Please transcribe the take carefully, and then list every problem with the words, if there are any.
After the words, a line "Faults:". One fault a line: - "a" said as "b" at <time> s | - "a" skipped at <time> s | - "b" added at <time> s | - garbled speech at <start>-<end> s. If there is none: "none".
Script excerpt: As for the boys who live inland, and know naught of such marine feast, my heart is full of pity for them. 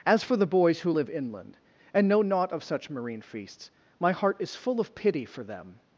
As for the boys who live inland, and know naught of such marine feasts, my heart is full of pity for them.
Faults:
- "feast" said as "feasts" at 3.2 s